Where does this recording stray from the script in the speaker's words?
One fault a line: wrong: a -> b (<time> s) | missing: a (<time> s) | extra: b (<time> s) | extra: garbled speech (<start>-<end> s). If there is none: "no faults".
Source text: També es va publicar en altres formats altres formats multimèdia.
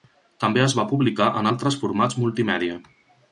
missing: altres formats (2.2 s)